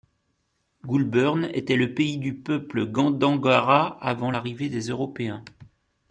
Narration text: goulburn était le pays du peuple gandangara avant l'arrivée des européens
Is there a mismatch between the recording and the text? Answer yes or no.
no